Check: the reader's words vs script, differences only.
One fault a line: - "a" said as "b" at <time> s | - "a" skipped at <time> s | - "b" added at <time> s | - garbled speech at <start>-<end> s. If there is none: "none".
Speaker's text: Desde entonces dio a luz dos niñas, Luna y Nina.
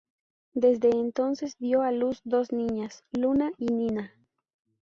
none